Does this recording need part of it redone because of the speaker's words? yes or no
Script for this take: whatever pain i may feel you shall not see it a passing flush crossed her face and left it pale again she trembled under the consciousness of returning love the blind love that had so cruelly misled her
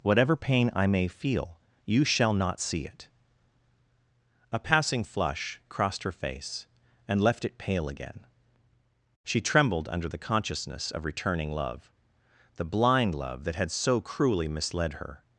no